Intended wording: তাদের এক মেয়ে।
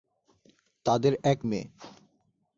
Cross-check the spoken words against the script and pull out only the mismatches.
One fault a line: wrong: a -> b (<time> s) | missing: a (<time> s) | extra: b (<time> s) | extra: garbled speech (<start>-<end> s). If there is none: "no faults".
no faults